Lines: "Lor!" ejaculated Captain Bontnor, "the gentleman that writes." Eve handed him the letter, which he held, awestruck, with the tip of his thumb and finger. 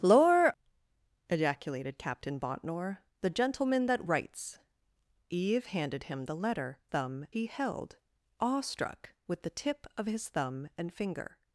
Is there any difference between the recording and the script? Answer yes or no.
yes